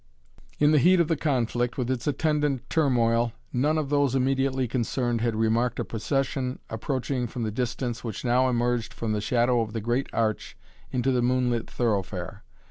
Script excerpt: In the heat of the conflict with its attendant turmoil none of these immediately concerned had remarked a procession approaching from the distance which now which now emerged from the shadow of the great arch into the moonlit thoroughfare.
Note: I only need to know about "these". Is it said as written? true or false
false